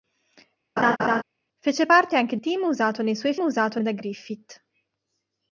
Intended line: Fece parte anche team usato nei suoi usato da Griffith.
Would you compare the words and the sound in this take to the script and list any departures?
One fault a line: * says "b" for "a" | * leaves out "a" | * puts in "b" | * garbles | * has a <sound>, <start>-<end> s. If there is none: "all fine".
* has a laugh, 0.8-1.2 s